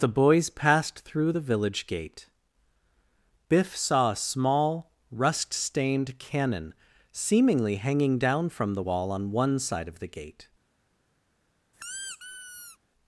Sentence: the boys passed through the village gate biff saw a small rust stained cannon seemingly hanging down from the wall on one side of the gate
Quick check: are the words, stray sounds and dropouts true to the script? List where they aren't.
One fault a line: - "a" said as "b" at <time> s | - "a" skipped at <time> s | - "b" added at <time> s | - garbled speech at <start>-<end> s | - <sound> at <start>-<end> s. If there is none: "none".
- squeak at 11.7-12.8 s